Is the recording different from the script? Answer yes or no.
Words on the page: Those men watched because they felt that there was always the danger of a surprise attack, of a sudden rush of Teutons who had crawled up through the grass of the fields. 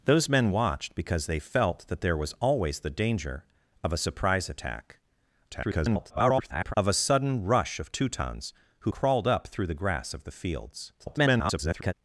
yes